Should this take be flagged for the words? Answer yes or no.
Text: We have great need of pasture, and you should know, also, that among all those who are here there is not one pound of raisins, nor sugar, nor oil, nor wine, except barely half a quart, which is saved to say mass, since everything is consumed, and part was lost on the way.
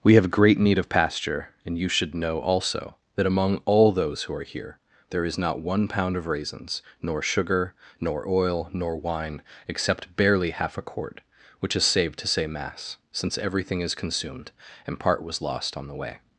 no